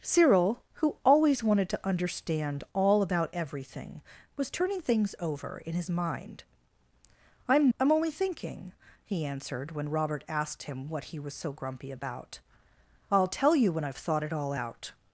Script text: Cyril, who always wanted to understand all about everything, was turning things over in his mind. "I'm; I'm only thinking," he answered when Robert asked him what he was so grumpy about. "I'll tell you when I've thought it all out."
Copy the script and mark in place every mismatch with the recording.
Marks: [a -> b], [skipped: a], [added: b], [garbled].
Cyril, who always wanted to understand all about everything, was turning things over in his mind. "I'm; I'm only thinking," he answered when Robert asked him what he was so grumpy about. "I'll tell you when I've thought it all out."